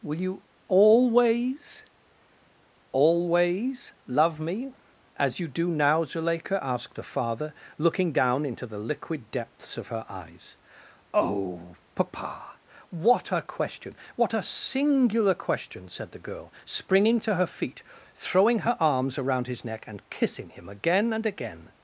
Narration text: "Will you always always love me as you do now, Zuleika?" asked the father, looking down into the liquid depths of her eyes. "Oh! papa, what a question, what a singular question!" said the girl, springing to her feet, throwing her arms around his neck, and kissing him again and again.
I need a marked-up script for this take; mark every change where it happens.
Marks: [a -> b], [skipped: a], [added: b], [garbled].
"Will you always always love me as you do now, Zuleika?" asked the father, looking down into the liquid depths of her eyes. "Oh! papa, what a question, what a singular question!" said the girl, springing to her feet, throwing her arms around his neck, and kissing him again and again.